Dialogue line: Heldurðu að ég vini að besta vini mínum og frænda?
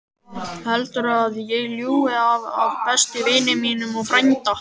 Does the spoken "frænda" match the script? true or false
true